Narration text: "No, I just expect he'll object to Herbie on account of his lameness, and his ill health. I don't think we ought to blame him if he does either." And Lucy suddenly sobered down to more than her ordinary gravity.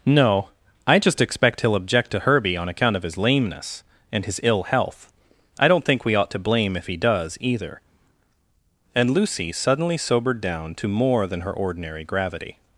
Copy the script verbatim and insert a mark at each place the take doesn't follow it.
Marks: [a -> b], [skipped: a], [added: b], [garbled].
"No, I just expect he'll object to Herbie on account of his lameness, and his ill health. I don't think we ought to blame [skipped: him] if he does either." And Lucy suddenly sobered down to more than her ordinary gravity.